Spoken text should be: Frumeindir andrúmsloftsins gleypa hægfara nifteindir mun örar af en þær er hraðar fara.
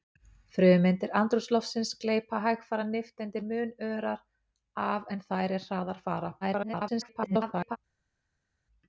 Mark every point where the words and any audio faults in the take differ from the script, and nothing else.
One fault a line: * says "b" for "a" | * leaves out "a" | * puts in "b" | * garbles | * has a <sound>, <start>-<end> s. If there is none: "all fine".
* garbles